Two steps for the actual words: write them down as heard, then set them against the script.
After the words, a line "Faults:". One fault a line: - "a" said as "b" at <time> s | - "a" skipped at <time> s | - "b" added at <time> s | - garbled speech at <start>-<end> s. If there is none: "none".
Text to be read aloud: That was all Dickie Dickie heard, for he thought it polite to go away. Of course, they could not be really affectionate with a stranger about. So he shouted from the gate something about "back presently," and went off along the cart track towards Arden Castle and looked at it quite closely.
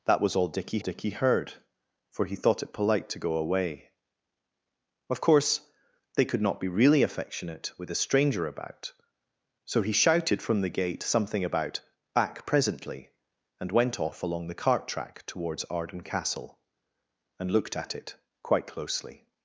That was all Dickie Dickie heard, for he thought it polite to go away. Of course, they could not be really affectionate with a stranger about. So he shouted from the gate something about "back presently," and went off along the cart track towards Arden Castle and looked at it quite closely.
Faults:
none